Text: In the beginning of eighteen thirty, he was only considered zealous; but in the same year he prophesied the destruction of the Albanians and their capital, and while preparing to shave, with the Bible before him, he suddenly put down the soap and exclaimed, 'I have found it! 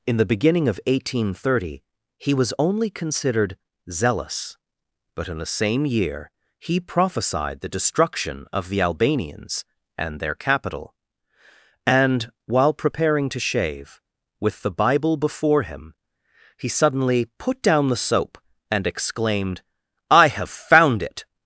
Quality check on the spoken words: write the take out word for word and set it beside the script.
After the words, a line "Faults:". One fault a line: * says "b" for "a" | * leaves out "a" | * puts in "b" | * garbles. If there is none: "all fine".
In the beginning of eighteen thirty, he was only considered zealous; but in the same year he prophesied the destruction of the Albanians and their capital, and while preparing to shave, with the Bible before him, he suddenly put down the soap and exclaimed, 'I have found it!
Faults:
all fine